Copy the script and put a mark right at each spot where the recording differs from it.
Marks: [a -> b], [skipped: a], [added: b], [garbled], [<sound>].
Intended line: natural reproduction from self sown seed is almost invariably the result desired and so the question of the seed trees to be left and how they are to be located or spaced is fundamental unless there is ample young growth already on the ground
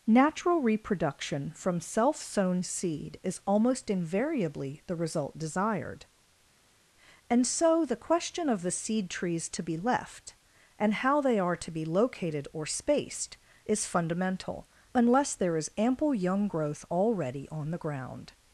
natural reproduction from self sown seed is almost invariably the result desired and so the question of the seed trees to be left and how they are to be located or spaced is fundamental unless there is ample young growth already on the ground